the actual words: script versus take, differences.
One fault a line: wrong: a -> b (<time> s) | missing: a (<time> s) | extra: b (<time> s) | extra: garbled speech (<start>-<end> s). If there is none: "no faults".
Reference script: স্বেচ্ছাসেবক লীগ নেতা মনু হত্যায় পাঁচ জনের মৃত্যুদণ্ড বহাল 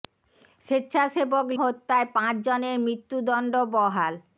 missing: লীগ নেতা মনু (1.5 s)